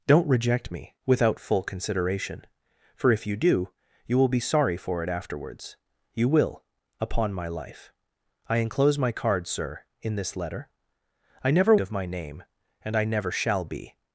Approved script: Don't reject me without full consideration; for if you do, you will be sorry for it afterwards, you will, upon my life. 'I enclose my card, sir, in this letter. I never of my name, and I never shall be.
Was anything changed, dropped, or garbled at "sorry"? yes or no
no